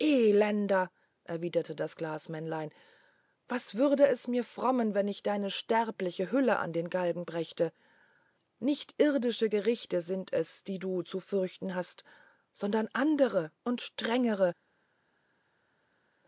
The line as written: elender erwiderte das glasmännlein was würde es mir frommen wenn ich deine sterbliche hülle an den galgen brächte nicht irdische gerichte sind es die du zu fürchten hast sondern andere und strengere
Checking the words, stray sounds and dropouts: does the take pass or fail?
pass